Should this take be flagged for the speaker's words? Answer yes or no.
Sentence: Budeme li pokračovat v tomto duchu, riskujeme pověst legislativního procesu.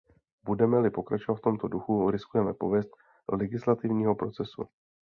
no